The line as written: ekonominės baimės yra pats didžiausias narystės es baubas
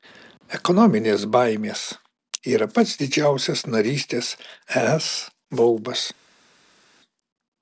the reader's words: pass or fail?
pass